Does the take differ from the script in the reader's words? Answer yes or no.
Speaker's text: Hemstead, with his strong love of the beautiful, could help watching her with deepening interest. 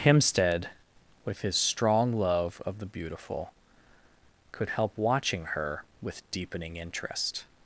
no